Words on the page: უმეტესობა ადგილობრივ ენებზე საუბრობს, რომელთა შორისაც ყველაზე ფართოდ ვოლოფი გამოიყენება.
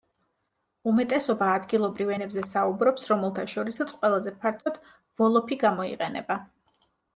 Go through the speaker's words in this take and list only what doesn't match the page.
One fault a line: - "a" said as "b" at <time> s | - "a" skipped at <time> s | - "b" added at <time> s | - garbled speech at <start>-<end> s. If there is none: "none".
none